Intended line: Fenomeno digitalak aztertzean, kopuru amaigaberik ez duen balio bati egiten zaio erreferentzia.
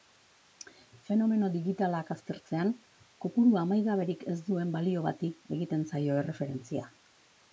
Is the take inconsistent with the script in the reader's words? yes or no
no